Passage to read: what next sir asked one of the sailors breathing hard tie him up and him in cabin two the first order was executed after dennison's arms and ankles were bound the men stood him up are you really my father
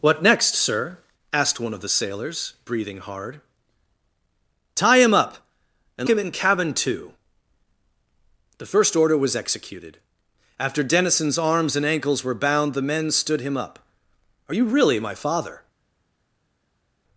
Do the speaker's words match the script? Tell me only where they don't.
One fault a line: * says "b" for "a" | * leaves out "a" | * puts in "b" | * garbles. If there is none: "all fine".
all fine